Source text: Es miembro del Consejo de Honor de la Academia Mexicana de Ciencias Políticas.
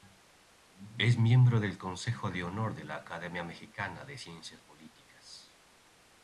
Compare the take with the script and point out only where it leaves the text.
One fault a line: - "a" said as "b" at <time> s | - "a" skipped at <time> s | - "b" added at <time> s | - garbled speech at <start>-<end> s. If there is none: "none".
none